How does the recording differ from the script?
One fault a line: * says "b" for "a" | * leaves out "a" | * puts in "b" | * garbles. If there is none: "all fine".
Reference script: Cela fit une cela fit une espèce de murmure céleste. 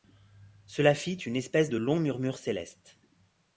* leaves out "cela fit une"
* puts in "long"